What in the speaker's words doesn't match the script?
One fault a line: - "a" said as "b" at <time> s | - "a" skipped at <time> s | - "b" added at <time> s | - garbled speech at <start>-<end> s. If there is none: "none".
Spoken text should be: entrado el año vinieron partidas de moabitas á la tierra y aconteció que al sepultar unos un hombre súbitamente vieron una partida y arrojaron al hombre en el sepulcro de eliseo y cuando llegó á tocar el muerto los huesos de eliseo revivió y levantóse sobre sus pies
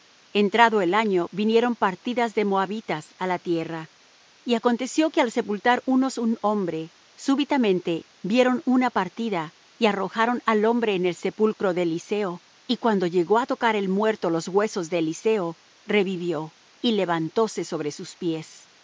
none